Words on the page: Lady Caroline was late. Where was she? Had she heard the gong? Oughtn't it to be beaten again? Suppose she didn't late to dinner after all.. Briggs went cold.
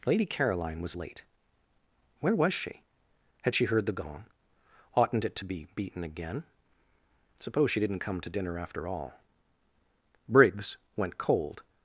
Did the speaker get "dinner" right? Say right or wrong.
right